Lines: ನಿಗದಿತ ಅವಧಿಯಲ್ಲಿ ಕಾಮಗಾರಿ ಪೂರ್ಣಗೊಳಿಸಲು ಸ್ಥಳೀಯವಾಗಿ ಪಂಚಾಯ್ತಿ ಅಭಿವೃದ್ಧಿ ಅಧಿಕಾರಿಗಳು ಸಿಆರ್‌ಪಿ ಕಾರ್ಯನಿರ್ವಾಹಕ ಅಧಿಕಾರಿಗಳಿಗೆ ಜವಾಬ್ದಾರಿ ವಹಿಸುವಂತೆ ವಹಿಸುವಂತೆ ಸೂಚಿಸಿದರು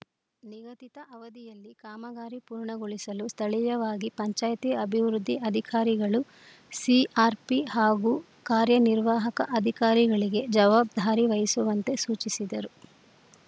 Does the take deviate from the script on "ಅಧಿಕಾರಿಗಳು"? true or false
false